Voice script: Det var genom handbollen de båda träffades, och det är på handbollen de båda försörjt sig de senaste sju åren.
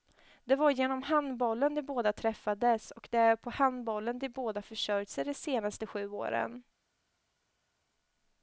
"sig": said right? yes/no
yes